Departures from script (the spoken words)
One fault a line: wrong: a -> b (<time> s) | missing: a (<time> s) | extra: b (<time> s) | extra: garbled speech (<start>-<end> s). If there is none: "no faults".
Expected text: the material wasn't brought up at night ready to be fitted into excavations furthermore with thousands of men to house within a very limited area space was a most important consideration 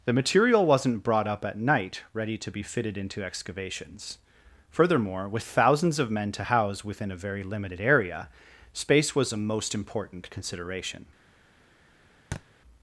no faults